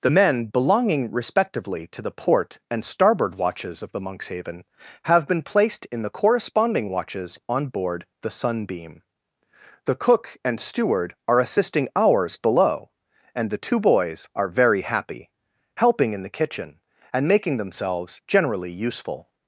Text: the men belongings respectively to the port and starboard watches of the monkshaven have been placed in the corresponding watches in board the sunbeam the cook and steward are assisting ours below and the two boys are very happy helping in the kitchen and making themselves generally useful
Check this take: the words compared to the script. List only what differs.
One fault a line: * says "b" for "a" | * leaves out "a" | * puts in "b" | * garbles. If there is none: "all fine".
* says "belonging" for "belongings"
* says "on" for "in"